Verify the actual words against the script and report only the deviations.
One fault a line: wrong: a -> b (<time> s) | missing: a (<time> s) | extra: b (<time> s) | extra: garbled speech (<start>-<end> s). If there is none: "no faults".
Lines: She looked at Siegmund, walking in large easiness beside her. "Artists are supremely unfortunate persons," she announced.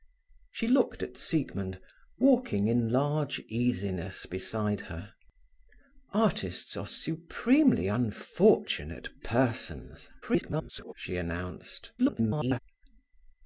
extra: garbled speech (10.2-10.9 s)
extra: garbled speech (12.0-12.6 s)